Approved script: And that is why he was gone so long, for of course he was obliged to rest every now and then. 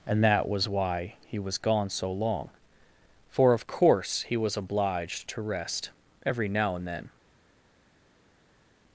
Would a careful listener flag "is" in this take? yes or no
yes